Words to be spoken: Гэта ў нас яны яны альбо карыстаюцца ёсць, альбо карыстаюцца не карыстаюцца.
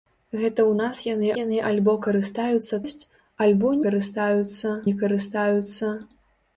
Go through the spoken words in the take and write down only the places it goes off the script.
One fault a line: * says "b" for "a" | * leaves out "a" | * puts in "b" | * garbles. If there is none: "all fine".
all fine